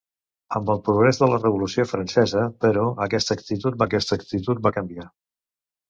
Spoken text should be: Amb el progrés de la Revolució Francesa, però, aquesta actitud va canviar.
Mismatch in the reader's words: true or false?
true